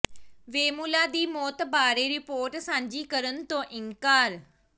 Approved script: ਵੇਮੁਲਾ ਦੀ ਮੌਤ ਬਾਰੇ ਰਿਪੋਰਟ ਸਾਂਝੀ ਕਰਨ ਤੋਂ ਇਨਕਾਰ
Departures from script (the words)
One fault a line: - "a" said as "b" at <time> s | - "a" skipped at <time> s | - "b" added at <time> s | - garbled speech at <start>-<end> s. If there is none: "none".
none